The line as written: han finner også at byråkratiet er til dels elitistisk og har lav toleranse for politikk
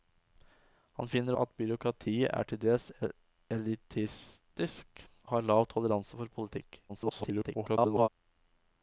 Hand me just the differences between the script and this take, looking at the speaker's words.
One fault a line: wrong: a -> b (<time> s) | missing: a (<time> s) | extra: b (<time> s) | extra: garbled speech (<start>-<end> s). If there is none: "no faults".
missing: også (1.4 s)
missing: og (5.0 s)
extra: garbled speech (6.9-8.1 s)